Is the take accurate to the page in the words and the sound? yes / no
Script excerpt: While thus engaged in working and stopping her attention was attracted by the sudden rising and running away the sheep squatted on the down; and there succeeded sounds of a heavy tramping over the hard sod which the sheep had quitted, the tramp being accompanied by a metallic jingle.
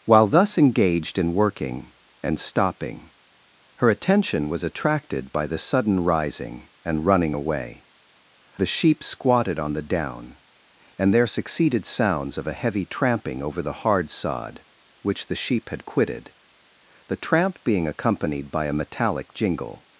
yes